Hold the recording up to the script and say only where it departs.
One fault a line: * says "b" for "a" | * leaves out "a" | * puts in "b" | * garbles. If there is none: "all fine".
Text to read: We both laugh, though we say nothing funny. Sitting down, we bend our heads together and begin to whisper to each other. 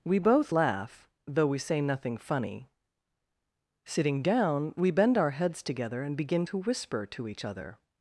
all fine